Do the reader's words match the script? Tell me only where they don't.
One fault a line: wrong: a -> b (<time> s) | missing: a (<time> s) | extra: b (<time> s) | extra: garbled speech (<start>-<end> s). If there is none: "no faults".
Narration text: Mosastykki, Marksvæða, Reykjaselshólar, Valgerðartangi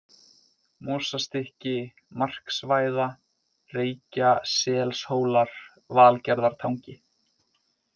no faults